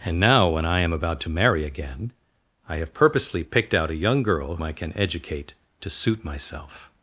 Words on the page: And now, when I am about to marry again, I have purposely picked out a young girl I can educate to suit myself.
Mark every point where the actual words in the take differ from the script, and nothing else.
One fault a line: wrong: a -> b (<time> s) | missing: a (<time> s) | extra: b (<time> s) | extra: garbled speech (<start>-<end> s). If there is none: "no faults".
no faults